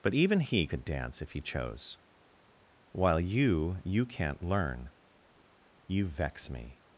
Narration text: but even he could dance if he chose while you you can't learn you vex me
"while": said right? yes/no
yes